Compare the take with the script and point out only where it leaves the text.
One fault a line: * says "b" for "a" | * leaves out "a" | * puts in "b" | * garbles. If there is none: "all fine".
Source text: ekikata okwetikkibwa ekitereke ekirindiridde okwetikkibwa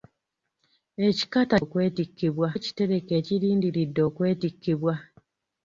all fine